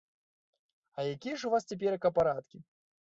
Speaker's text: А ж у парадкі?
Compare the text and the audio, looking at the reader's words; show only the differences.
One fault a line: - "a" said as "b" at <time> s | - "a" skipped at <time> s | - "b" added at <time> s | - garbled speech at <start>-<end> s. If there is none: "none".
- "якія" added at 1.0 s
- "вас цяперака" added at 1.5 s